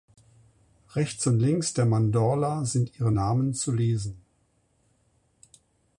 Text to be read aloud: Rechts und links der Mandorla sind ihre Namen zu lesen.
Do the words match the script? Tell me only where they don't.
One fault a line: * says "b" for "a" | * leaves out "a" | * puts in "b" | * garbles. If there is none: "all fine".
all fine